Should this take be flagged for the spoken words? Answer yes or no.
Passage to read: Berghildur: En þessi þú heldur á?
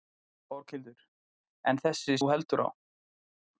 no